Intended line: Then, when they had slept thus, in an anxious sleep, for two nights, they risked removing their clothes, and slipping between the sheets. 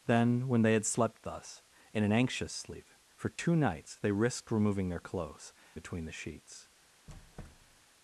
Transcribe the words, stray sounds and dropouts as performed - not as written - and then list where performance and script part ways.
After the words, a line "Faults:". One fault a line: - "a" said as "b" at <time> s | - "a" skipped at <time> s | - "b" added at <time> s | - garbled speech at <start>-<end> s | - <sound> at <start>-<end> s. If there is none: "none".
Then, when they had slept thus, in an anxious sleep, for two nights, they risked removing their clothes, between the sheets.
Faults:
- dropout at 3.4-3.4 s
- "and slipping" skipped at 5.5 s
- squeak at 7.1-7.8 s